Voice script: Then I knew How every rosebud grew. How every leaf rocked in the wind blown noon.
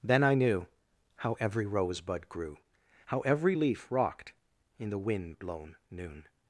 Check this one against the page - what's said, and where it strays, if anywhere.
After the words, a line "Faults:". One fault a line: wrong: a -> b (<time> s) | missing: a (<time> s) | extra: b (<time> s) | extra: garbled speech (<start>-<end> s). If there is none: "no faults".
Then I knew How every rosebud grew. How every leaf rocked in the wind blown noon.
Faults:
no faults